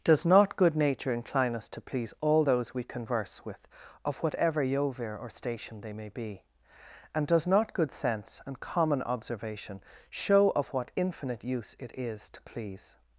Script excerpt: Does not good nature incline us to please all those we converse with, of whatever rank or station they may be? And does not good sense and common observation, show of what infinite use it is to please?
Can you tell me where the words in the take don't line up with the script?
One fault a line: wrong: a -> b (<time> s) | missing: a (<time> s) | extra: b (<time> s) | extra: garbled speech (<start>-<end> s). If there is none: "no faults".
wrong: rank -> yovir (4.6 s)